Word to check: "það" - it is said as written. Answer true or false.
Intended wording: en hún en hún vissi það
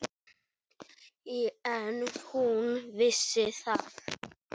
true